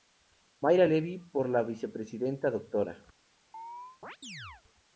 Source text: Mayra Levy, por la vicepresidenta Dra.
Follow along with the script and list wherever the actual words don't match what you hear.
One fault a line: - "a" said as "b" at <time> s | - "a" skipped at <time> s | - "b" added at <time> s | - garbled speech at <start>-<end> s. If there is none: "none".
none